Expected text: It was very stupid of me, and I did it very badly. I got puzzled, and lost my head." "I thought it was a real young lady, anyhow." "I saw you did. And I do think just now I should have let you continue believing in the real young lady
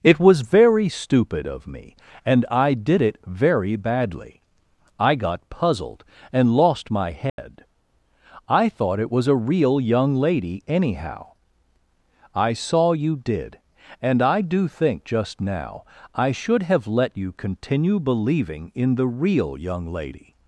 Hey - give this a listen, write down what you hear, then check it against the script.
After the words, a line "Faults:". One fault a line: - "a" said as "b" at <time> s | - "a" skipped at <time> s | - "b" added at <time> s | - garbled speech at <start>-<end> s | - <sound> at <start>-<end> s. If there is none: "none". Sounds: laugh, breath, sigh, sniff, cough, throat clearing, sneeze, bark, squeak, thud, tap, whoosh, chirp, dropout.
It was very stupid of me, and I did it very badly. I got puzzled, and lost my head." "I thought it was a real young lady, anyhow." "I saw you did. And I do think just now I should have let you continue believing in the real young lady
Faults:
- dropout at 7.3-7.4 s